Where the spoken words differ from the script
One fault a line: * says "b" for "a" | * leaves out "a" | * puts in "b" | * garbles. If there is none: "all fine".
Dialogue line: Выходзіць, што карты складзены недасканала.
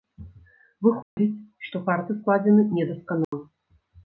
all fine